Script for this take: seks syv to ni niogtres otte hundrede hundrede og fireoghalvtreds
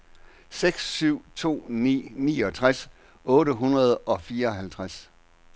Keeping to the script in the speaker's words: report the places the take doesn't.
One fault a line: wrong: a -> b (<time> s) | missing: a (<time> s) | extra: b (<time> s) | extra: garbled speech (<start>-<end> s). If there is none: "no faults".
missing: hundrede (4.0 s)